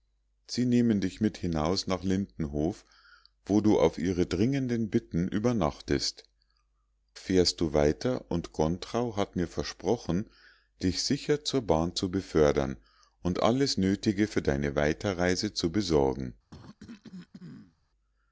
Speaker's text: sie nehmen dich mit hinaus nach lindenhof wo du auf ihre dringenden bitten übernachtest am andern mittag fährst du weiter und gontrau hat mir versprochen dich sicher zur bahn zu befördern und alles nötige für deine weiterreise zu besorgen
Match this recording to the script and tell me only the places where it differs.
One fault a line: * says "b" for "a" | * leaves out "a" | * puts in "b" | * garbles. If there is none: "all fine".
* leaves out "am andern mittag"